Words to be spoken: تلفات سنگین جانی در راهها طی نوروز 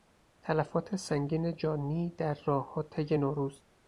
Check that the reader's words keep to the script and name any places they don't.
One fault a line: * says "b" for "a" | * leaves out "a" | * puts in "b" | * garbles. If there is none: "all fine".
all fine